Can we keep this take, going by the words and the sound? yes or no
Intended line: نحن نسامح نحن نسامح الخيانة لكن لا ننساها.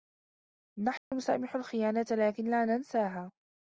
no